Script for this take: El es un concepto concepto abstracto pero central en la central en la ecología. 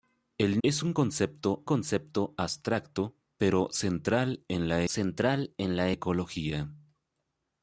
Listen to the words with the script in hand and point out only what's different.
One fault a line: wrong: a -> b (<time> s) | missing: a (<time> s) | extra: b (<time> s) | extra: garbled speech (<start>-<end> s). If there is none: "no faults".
no faults